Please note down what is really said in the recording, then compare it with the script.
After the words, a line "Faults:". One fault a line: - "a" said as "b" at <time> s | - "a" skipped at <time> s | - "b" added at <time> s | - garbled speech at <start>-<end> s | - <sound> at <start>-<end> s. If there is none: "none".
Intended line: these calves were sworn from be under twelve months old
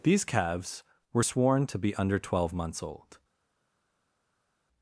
these calves were sworn to be under twelve months old
Faults:
- "from" said as "to" at 1.6 s